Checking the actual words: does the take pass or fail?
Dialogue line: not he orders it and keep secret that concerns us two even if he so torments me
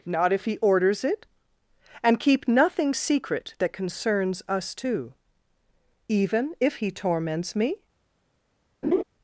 fail